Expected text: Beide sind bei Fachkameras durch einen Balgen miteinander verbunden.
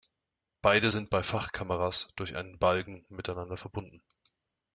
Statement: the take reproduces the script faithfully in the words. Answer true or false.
true